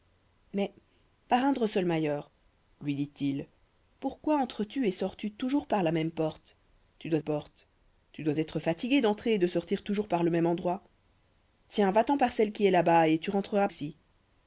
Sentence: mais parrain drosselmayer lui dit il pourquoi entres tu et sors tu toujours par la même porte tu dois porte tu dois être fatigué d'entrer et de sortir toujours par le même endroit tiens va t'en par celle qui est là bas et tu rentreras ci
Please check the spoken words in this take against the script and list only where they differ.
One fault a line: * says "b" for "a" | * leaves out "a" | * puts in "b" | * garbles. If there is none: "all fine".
all fine